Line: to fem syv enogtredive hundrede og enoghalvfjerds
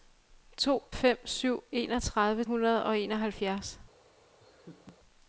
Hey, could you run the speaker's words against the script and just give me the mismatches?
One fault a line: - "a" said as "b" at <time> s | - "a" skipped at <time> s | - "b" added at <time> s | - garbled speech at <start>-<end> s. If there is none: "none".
none